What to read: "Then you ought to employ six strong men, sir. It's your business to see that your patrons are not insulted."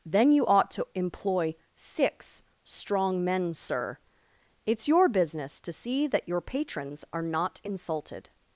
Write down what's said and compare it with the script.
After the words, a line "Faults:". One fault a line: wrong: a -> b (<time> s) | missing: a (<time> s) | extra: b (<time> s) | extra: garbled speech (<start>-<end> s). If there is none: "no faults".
"Then you ought to employ six strong men, sir. It's your business to see that your patrons are not insulted."
Faults:
no faults